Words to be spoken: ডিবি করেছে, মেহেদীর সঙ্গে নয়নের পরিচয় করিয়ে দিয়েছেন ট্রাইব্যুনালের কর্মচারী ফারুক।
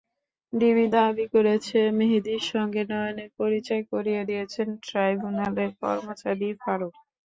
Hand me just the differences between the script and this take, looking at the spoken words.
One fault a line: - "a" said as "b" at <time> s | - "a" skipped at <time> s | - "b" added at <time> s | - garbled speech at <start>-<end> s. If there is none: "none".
- "দাবি" added at 0.9 s